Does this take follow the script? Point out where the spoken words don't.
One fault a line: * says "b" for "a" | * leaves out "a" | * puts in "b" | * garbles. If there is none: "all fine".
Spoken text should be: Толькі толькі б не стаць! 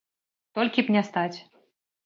* leaves out "толькі"